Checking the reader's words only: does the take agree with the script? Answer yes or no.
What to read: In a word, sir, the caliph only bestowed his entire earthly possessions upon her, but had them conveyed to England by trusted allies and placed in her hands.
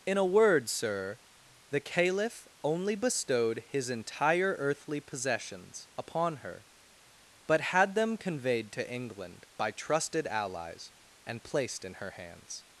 yes